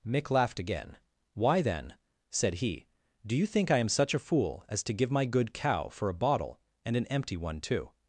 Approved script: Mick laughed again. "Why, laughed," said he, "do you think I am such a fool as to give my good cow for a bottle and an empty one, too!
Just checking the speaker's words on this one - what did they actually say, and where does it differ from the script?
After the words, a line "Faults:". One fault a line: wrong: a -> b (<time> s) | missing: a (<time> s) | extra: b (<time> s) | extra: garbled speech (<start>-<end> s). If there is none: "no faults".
Mick laughed again. "Why, then," said he, "do you think I am such a fool as to give my good cow for a bottle and an empty one, too!
Faults:
wrong: laughed -> then (1.6 s)